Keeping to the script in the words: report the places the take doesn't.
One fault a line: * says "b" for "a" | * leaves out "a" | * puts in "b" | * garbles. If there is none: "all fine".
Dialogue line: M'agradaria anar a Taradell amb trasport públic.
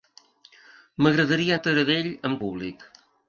* leaves out "anar"
* leaves out "trasport"